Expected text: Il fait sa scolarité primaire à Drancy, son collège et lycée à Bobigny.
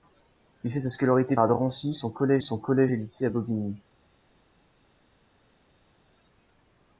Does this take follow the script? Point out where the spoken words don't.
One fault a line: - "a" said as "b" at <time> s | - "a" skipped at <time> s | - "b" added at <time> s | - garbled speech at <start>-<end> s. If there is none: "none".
- "primaire" skipped at 1.4 s
- "son collège" added at 2.4 s